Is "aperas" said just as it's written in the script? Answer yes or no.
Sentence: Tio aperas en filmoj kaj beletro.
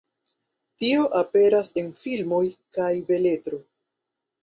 yes